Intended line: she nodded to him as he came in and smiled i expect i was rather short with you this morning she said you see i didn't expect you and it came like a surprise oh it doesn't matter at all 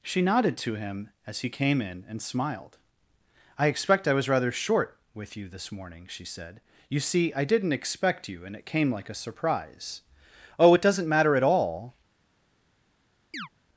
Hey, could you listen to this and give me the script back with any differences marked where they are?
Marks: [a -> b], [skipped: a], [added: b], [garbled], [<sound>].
she nodded to him as he came in and smiled i expect i was rather short with you this morning she said you see i didn't expect you and it came like a surprise oh it doesn't matter at all [chirp]